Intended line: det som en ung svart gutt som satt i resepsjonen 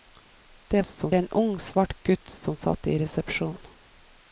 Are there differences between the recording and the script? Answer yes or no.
no